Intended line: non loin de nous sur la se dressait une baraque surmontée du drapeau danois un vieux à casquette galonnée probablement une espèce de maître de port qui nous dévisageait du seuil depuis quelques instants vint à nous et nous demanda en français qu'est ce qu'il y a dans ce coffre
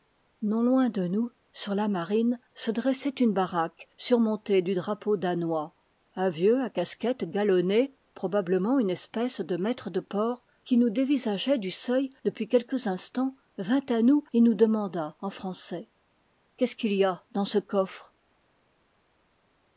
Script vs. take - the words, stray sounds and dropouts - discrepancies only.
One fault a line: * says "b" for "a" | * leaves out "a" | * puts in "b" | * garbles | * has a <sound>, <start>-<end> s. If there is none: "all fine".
* puts in "marine"